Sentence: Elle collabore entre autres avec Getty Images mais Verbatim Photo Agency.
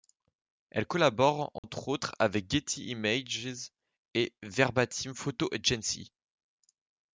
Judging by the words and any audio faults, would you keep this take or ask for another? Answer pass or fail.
fail